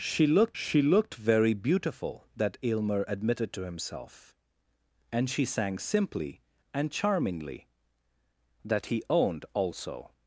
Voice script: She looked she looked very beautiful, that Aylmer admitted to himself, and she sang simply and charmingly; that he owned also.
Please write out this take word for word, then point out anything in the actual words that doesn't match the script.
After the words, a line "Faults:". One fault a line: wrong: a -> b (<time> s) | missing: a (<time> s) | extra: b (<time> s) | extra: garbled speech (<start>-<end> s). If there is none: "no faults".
She looked she looked very beautiful, that Aylmer admitted to himself, and she sang simply and charmingly; that he owned also.
Faults:
no faults